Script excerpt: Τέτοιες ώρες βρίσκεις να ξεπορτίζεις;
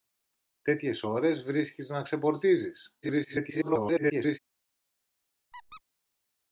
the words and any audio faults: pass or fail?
fail